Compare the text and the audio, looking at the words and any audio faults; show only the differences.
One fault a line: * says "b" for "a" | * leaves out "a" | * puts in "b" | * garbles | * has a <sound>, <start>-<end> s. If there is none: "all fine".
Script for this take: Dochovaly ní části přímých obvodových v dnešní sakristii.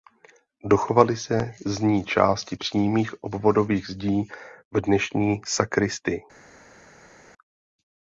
* puts in "se z"
* puts in "zdí"